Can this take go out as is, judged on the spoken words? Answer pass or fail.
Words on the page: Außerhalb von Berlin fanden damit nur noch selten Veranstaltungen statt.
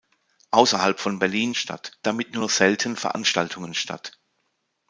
fail